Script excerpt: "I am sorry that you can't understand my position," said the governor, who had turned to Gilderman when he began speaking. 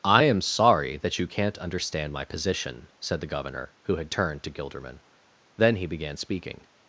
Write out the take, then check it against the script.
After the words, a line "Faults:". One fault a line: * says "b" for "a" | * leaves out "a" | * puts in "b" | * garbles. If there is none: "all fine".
"I am sorry that you can't understand my position," said the governor, who had turned to Gilderman then he began speaking.
Faults:
* says "then" for "when"